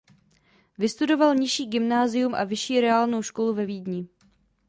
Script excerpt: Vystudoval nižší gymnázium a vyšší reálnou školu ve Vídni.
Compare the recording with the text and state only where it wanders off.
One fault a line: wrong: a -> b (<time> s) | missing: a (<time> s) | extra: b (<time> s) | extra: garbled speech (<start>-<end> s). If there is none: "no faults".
no faults